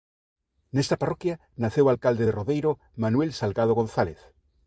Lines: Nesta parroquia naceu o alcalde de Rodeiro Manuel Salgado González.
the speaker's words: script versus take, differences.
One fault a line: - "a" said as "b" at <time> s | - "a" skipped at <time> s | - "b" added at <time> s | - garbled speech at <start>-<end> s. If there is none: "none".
none